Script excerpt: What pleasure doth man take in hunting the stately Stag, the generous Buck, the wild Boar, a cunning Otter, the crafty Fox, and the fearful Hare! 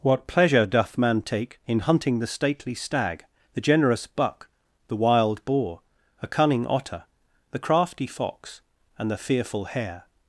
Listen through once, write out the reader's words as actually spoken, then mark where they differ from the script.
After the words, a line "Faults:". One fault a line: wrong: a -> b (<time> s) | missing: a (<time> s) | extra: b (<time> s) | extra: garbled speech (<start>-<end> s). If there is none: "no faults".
What pleasure doth man take in hunting the stately Stag, the generous Buck, the wild Boar, a cunning Otter, the crafty Fox, and the fearful Hare!
Faults:
no faults